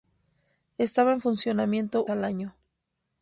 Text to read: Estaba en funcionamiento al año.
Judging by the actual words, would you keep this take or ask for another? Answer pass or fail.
pass